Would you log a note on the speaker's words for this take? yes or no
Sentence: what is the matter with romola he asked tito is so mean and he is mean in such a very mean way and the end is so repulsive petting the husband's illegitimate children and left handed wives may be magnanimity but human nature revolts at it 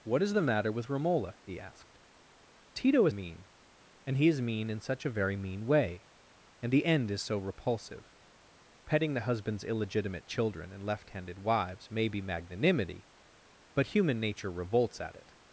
yes